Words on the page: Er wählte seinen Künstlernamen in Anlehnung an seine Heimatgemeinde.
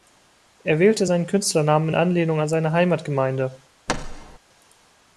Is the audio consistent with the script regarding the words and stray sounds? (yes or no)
no